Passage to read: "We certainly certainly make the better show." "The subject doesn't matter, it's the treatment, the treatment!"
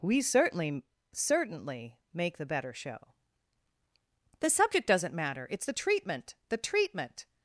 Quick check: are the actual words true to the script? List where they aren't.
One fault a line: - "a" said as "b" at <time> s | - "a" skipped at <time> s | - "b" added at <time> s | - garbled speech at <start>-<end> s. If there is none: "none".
none